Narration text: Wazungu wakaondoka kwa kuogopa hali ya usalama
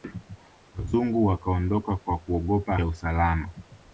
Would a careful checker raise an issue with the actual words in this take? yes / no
yes